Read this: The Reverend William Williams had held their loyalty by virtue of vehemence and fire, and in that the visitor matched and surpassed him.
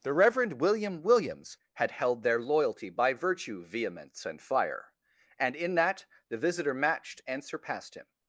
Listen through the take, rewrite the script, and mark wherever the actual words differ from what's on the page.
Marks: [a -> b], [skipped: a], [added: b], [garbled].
The Reverend William Williams had held their loyalty by virtue [skipped: of] vehemence and fire, and in that the visitor matched and surpassed him.